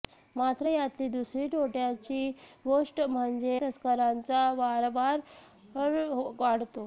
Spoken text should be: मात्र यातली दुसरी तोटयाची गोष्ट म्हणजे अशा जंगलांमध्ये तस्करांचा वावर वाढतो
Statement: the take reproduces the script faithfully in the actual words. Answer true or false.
false